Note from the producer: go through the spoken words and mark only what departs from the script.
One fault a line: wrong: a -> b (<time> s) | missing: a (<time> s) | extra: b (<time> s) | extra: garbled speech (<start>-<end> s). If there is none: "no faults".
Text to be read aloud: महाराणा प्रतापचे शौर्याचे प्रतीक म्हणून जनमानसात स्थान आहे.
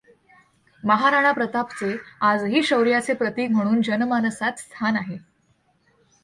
extra: आजही (2.2 s)